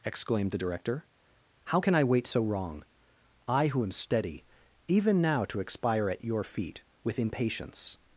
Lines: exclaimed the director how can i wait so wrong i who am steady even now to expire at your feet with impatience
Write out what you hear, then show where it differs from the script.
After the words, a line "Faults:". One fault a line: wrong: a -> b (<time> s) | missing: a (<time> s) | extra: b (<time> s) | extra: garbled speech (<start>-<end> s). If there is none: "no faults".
exclaimed the director how can i wait so wrong i who am steady even now to expire at your feet with impatience
Faults:
no faults